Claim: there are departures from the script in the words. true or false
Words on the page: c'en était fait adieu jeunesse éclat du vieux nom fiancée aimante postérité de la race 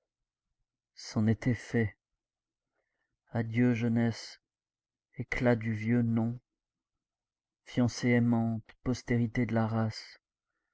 false